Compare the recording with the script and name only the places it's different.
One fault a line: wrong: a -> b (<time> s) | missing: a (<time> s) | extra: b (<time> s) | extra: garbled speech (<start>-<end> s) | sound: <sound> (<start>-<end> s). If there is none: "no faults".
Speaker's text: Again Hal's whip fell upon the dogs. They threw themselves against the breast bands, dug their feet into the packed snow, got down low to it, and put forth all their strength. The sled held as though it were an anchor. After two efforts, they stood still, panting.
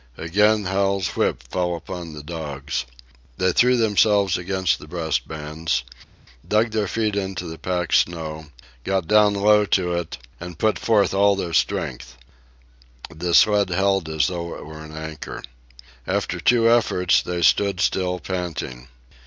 no faults